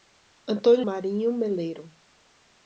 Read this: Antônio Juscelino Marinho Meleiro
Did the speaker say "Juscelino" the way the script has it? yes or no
no